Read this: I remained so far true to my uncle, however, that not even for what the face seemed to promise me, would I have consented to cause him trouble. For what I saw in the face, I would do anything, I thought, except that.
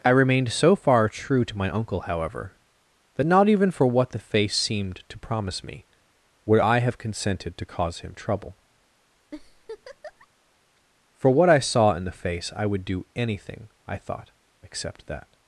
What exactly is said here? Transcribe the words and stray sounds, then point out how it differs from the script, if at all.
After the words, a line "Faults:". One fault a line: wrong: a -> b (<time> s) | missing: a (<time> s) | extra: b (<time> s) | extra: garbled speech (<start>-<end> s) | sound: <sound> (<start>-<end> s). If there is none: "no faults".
I remained so far true to my uncle, however, that not even for what the face seemed to promise me, would I have consented to cause him trouble. For what I saw in the face, I would do anything, I thought, except that.
Faults:
sound: laugh (9.3-10.3 s)